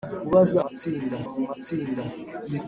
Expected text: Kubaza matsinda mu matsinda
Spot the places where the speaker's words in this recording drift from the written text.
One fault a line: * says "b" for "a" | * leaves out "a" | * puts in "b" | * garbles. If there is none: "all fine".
all fine